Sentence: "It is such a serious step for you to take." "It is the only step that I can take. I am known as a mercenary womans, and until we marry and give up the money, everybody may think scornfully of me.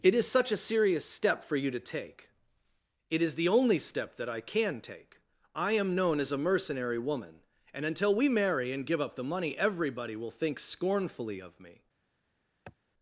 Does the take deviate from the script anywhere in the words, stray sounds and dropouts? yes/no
yes